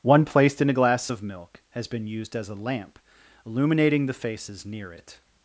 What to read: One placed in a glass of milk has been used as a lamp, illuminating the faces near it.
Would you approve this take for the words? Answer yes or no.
yes